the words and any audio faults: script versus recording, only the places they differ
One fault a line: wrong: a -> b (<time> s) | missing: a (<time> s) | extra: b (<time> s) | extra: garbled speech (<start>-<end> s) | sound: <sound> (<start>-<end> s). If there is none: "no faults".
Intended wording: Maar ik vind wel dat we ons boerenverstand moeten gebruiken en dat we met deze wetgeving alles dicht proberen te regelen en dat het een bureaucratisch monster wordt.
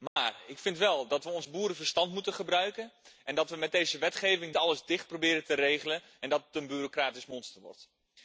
sound: dropout (0.1-0.2 s)